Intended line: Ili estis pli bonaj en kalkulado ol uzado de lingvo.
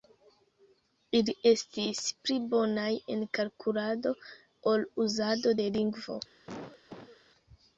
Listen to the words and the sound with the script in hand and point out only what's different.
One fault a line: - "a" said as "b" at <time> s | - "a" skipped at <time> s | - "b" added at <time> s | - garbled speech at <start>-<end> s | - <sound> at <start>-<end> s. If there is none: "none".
- cough at 6.5-7.2 s